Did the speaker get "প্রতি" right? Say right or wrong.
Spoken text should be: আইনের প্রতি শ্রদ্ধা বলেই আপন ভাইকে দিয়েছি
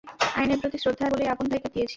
right